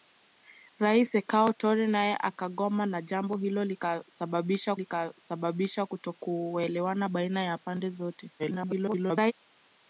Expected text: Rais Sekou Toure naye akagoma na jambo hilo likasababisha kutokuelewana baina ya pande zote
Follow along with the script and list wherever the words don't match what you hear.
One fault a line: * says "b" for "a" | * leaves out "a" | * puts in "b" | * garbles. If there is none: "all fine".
* puts in "likasababisha"
* garbles